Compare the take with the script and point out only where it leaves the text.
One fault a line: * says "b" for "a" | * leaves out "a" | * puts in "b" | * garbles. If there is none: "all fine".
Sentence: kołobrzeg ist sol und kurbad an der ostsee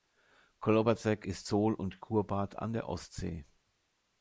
all fine